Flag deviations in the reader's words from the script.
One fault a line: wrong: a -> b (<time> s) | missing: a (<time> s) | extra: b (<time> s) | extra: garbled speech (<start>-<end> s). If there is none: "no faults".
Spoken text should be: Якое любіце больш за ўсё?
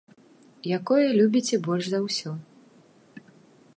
no faults